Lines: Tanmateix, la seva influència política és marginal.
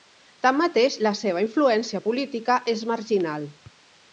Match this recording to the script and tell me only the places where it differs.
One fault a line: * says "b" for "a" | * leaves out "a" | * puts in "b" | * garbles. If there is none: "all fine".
all fine